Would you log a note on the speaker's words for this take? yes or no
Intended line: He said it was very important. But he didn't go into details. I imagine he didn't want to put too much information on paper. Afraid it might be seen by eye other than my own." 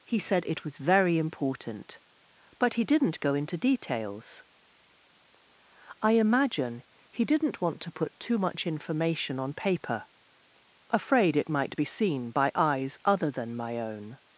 yes